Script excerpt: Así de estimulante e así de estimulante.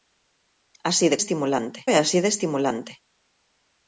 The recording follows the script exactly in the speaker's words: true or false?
true